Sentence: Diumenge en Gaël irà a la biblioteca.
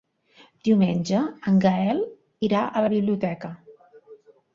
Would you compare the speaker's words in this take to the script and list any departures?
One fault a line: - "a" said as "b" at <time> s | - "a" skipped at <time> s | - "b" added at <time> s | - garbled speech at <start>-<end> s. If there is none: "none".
none